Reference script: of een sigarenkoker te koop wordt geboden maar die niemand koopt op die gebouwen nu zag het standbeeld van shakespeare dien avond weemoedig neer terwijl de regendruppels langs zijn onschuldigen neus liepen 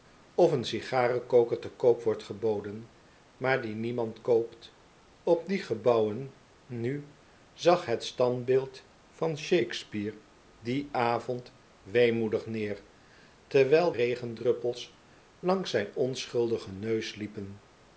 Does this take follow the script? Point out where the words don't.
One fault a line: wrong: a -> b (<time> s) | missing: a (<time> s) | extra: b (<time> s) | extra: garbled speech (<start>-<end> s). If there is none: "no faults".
missing: de (13.9 s)